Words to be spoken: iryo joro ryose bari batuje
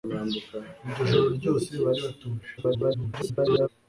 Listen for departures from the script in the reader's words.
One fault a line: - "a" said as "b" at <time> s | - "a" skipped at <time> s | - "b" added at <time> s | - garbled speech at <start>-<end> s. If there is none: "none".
- garbled speech at 2.6-3.7 s